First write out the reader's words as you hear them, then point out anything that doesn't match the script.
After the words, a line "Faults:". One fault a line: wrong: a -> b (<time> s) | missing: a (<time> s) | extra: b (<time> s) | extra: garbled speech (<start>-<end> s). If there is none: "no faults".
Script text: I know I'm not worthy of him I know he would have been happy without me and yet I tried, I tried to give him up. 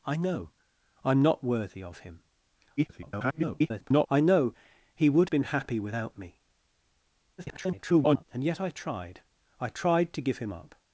I know I'm not worthy of him [garbled] I know he would been happy without me [garbled] and yet I tried, I tried to give him up.
Faults:
extra: garbled speech (2.8-4.1 s)
missing: have (5.3 s)
extra: garbled speech (7.4-8.2 s)